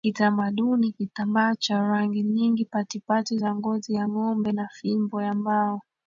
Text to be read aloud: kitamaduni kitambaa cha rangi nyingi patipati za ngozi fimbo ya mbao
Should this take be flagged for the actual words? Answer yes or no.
yes